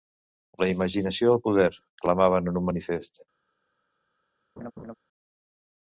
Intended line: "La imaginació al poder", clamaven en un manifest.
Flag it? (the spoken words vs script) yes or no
no